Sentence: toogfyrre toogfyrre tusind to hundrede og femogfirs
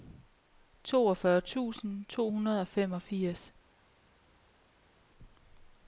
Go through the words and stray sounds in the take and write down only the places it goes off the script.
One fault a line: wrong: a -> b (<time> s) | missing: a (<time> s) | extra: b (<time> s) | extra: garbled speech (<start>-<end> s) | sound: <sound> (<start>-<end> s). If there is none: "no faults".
missing: toogfyrre (1.4 s)